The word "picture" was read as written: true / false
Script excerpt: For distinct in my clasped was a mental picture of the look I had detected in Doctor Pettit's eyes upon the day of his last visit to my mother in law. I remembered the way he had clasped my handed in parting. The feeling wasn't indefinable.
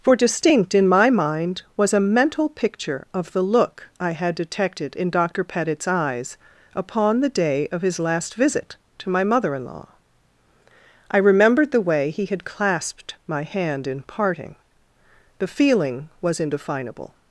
true